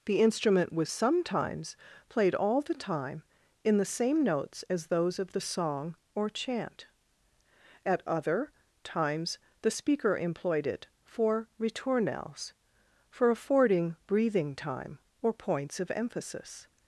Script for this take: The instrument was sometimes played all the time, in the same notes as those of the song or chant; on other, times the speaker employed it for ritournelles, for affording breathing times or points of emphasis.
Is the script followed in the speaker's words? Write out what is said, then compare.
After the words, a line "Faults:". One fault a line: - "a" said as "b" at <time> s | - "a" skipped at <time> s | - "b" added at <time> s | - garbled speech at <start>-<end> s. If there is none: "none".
The instrument was sometimes played all the time, in the same notes as those of the song or chant; at other, times the speaker employed it for ritournelles, for affording breathing time or points of emphasis.
Faults:
- "on" said as "at" at 7.8 s
- "times" said as "time" at 14.5 s